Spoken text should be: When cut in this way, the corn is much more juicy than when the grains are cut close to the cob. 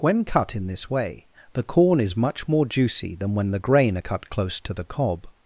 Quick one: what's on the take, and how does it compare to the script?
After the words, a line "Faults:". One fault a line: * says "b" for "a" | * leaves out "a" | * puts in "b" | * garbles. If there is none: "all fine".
When cut in this way, the corn is much more juicy than when the grain are cut close to the cob.
Faults:
* says "grain" for "grains"